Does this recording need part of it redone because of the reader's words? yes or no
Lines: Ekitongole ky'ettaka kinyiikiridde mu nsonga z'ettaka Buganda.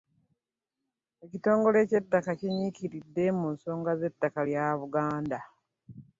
yes